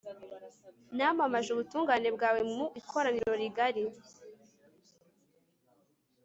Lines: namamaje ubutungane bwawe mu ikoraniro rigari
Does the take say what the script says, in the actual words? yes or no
yes